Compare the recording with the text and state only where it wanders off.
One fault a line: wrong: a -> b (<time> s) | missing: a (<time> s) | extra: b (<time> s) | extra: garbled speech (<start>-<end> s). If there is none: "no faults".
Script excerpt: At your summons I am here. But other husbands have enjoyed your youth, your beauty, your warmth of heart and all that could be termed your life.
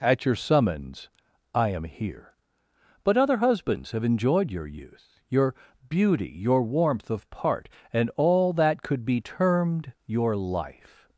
wrong: heart -> part (7.3 s)